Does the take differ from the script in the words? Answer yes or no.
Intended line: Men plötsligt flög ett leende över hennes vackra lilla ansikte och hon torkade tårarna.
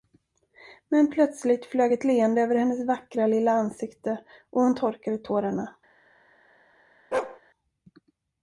no